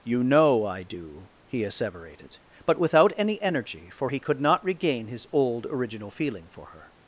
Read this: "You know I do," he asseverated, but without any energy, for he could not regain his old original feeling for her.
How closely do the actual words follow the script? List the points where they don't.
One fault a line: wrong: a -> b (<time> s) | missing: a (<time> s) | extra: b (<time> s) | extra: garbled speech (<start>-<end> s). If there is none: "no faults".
no faults